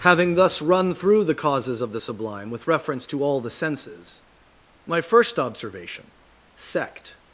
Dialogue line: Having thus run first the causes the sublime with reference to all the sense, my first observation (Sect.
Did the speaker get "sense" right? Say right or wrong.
wrong